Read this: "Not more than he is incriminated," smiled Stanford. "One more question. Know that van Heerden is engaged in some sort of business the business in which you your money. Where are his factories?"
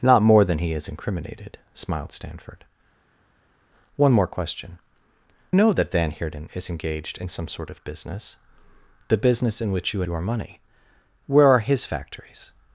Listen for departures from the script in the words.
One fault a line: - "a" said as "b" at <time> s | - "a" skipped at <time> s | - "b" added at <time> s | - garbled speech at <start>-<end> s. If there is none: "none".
none